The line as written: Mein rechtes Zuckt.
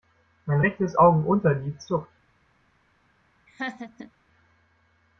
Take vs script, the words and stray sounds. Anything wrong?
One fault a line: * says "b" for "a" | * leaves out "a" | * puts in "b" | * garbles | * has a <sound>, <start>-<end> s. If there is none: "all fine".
* puts in "Augenunterlid"
* has a laugh, 3.5-4.1 s